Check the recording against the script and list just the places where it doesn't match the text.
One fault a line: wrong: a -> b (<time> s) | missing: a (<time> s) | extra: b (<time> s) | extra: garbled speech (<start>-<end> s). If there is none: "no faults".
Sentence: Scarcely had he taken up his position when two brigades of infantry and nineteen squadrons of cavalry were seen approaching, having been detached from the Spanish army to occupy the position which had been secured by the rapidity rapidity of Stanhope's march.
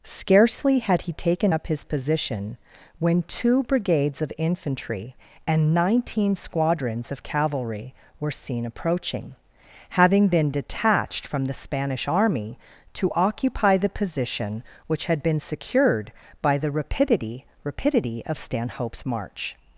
no faults